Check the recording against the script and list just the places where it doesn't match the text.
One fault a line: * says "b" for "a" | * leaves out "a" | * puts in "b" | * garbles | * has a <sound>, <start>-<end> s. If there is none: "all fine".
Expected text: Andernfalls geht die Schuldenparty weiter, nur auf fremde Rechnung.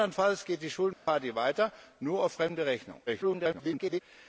* has a dropout, 0.9-1.1 s
* garbles